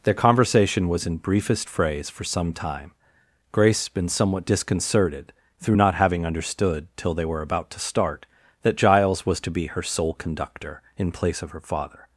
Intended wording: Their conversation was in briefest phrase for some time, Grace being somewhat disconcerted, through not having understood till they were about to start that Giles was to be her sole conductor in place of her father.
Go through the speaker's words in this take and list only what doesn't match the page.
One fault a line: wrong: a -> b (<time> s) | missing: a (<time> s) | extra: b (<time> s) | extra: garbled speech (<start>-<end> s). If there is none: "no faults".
wrong: being -> been (3.9 s)